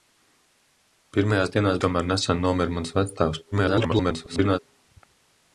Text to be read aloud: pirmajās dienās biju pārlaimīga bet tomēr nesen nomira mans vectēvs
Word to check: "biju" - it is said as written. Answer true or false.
false